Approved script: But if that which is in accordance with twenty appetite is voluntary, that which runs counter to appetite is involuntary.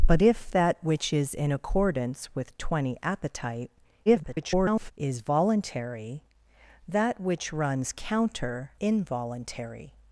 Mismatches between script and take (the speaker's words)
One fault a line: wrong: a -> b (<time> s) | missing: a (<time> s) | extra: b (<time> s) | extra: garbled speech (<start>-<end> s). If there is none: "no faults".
extra: garbled speech (4.1-4.9 s)
missing: to appetite is (8.7 s)